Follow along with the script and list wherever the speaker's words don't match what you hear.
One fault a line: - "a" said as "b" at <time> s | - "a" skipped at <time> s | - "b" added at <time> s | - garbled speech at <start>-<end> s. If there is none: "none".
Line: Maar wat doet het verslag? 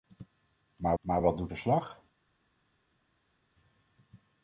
- "maar" added at 1.0 s
- "het" skipped at 1.5 s